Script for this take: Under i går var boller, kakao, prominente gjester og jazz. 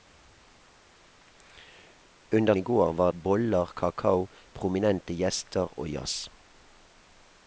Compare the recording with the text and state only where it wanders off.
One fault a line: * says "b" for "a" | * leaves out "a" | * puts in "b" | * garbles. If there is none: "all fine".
all fine